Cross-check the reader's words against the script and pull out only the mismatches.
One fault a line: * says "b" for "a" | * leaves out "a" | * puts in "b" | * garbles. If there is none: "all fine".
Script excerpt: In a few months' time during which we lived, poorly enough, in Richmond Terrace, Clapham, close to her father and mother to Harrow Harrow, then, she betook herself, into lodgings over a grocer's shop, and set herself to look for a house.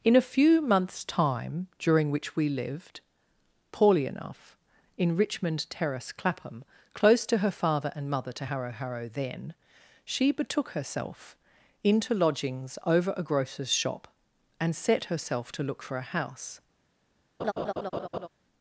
all fine